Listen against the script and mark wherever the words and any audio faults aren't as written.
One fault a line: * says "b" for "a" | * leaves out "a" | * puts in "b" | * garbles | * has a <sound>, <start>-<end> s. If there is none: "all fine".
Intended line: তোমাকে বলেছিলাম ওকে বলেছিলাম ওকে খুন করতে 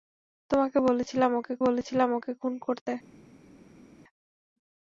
all fine